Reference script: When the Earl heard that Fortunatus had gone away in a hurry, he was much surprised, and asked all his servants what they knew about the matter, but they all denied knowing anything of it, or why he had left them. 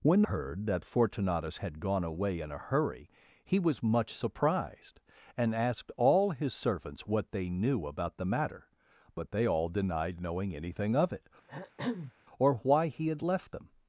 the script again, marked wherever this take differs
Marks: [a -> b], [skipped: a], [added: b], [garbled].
When [skipped: the Earl] heard that Fortunatus had gone away in a hurry, he was much surprised, and asked all his servants what they knew about the matter, but they all denied knowing anything of it, or why he had left them.